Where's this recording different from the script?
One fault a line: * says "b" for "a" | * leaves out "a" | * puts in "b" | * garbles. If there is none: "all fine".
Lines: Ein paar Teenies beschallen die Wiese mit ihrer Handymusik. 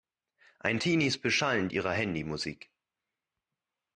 * leaves out "paar"
* leaves out "die Wiese mit"